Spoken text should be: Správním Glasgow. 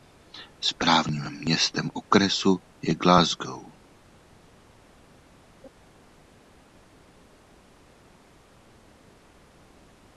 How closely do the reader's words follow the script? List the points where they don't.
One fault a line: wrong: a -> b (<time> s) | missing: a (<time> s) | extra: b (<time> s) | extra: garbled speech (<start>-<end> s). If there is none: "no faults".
extra: městem okresu je (1.4 s)